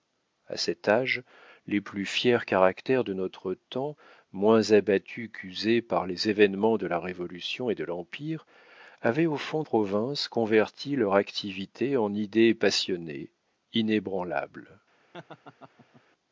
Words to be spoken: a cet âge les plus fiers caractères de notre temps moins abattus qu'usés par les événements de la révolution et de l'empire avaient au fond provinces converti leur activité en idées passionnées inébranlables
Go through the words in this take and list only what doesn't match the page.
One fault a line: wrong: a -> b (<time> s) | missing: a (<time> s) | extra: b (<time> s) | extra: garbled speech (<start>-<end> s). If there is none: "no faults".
no faults